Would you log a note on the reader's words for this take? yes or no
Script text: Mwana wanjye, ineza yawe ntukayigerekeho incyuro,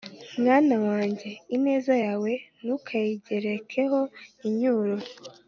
no